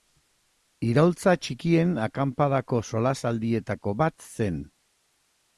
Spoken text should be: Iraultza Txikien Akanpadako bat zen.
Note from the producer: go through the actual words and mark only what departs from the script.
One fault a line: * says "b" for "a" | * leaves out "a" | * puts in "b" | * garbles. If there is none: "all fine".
* puts in "solasaldietako"